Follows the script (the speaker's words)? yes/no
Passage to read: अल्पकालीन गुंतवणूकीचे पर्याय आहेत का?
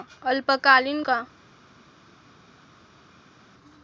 no